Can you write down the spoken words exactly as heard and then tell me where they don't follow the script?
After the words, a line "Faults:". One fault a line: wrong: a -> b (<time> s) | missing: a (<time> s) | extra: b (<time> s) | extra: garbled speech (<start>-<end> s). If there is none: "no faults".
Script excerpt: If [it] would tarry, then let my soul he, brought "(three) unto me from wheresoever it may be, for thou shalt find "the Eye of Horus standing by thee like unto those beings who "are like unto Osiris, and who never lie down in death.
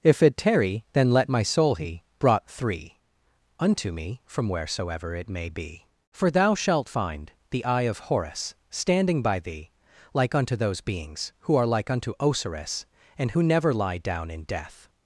If [it] tarry, then let my soul he, brought "(three) unto me from wheresoever it may be, for thou shalt find "the Eye of Horus standing by thee like unto those beings who "are like unto Osiris, and who never lie down in death.
Faults:
missing: would (0.3 s)